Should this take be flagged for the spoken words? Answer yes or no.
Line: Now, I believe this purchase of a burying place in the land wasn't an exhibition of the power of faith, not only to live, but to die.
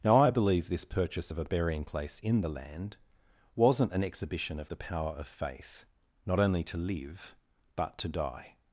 no